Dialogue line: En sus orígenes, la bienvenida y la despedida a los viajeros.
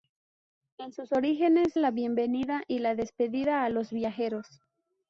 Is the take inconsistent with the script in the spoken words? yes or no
no